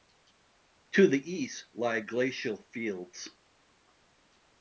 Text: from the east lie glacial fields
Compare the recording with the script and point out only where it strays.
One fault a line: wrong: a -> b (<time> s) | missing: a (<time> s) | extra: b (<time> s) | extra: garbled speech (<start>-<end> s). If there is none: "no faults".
wrong: from -> to (0.9 s)